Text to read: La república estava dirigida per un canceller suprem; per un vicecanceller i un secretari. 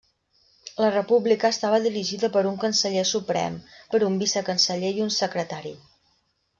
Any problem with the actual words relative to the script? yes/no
no